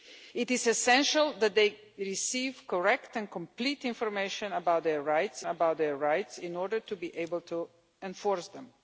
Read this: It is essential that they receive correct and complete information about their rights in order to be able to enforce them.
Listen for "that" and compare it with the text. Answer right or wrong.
right